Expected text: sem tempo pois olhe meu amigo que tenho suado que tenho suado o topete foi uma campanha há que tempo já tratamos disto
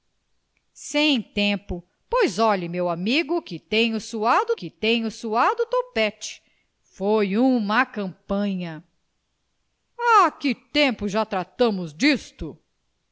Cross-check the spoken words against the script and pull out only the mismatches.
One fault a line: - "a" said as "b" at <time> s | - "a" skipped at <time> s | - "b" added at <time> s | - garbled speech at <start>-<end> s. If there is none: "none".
none